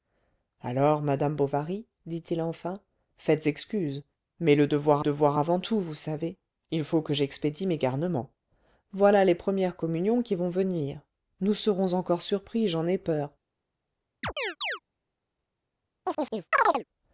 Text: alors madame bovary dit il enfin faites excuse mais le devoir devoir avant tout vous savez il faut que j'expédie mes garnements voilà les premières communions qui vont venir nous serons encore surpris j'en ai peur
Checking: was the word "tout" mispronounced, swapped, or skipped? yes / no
no